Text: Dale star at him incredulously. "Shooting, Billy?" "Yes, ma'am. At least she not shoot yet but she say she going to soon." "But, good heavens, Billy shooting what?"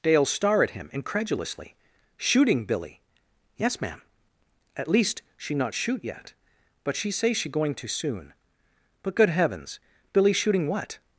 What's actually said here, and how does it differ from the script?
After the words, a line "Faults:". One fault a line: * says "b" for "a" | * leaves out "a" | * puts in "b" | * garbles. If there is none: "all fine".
Dale star at him incredulously. "Shooting, Billy?" "Yes, ma'am. At least she not shoot yet but she say she going to soon." "But, good heavens, Billy shooting what?"
Faults:
all fine